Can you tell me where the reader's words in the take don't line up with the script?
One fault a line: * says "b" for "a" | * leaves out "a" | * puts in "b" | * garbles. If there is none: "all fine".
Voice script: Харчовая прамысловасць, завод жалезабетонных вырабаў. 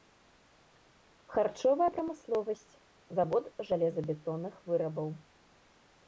all fine